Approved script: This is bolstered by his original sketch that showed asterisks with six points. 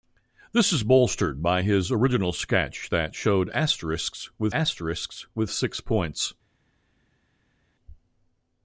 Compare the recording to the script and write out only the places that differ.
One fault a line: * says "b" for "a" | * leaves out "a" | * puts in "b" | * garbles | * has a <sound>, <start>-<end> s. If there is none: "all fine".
* puts in "asterisks with"